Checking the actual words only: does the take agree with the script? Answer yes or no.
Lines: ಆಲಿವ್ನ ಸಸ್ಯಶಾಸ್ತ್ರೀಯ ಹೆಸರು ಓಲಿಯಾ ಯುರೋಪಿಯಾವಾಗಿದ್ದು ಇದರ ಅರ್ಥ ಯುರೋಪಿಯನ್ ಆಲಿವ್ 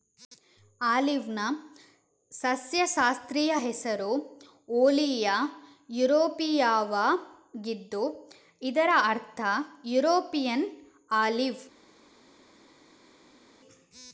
yes